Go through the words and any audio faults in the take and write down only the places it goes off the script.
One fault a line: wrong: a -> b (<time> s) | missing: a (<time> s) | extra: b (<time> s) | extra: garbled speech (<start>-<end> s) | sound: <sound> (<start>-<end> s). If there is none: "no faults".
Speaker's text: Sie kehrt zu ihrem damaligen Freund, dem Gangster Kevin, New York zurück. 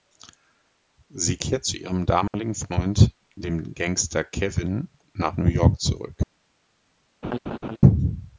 sound: dropout (2.3-2.3 s)
extra: nach (5.1 s)
sound: laugh (7.2-7.8 s)